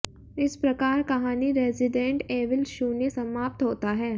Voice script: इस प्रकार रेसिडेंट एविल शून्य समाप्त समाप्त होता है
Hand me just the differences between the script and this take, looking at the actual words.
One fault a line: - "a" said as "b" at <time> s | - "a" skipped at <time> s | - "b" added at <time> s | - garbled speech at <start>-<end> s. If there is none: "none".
- "कहानी" added at 1.1 s
- "समाप्त" skipped at 3.6 s